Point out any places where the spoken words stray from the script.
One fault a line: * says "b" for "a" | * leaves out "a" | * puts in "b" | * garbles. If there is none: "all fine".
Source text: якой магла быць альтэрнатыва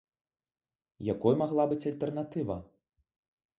all fine